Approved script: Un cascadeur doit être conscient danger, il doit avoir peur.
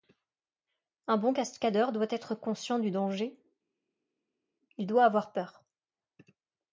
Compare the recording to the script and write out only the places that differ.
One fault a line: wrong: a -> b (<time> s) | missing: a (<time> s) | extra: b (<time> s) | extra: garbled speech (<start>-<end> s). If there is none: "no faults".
extra: bon (1.2 s)
extra: du (2.8 s)